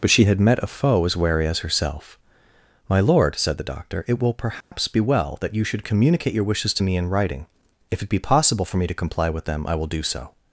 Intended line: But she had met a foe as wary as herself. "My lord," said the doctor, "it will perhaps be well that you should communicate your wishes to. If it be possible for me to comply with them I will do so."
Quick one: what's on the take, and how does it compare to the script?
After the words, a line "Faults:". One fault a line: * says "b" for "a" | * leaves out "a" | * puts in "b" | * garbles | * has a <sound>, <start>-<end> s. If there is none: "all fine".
But she had met a foe as wary as herself. "My lord," said the doctor, "it will perhaps be well that you should communicate your wishes to me in writing. If it be possible for me to comply with them I will do so."
Faults:
* has a dropout, 4.6-4.7 s
* puts in "me in writing"